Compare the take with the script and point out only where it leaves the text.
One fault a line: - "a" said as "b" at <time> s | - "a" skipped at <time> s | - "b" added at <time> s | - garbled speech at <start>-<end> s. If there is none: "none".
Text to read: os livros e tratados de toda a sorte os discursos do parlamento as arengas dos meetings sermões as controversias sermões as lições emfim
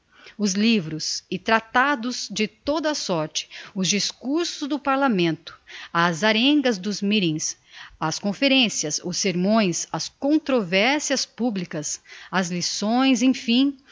- "as conferencias os" added at 8.0 s
- "sermões" said as "publicas" at 11.3 s